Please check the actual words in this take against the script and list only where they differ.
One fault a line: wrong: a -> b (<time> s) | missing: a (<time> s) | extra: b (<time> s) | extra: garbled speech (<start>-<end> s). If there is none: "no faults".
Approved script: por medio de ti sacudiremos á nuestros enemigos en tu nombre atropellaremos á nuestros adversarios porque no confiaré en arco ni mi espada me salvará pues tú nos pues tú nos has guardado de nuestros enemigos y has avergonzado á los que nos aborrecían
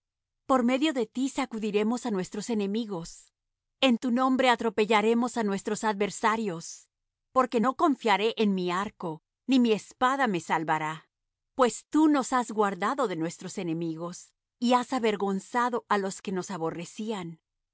extra: mi (8.6 s)
missing: pues tú nos (12.3 s)